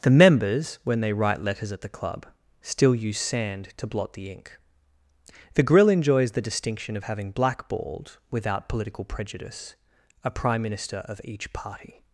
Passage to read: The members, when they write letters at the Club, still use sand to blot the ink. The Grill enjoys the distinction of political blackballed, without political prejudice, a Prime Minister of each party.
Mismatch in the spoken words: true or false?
true